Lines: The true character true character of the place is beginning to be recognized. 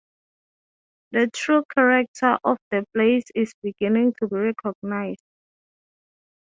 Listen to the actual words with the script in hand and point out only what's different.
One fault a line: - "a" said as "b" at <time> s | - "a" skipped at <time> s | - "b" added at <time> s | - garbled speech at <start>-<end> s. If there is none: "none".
- "true character" skipped at 2.4 s